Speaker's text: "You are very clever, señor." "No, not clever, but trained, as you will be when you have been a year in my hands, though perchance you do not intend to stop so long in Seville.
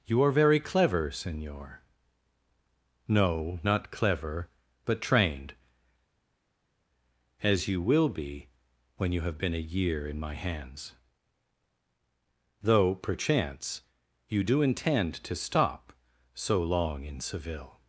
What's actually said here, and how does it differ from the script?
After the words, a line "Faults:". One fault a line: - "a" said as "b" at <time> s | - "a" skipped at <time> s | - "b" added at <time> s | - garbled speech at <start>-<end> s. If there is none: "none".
"You are very clever, señor." "No, not clever, but trained, as you will be when you have been a year in my hands, though perchance you do intend to stop so long in Seville.
Faults:
- "not" skipped at 14.6 s